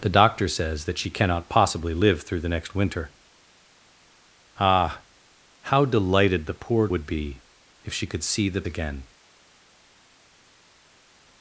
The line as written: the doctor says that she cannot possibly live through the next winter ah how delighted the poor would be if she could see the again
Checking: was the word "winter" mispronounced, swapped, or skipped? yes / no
no